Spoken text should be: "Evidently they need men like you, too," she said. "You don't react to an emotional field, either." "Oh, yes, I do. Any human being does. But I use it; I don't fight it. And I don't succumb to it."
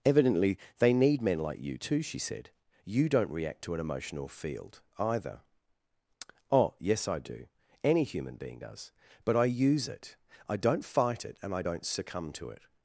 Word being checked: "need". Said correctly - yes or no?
yes